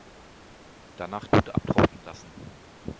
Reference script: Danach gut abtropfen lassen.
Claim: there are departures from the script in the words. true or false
false